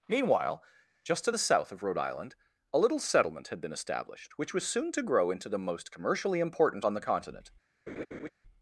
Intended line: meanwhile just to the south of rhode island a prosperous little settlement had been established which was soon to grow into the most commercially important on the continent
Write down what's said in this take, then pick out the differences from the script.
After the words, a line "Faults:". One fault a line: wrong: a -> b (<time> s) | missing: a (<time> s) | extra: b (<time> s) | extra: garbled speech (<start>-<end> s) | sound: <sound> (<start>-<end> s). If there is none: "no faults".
meanwhile just to the south of rhode island a little settlement had been established which was soon to grow into the most commercially important on the continent
Faults:
missing: prosperous (2.8 s)
sound: laugh (7.9-8.3 s)